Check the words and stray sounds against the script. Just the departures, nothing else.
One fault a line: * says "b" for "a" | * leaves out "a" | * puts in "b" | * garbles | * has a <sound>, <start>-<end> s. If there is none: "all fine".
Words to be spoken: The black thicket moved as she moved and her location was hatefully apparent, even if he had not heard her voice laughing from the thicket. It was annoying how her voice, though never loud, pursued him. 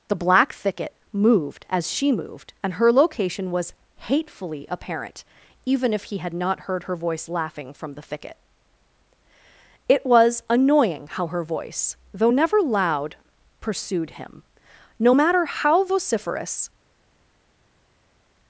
* puts in "No matter how vociferous"